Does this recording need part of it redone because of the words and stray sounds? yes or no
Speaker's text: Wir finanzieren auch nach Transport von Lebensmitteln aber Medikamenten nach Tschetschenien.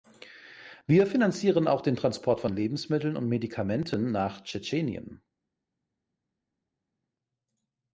yes